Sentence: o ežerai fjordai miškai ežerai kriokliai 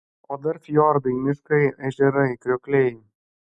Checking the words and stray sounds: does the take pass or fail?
fail